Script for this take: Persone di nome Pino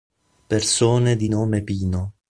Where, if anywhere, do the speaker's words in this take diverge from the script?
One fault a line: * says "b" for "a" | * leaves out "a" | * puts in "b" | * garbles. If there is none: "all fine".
all fine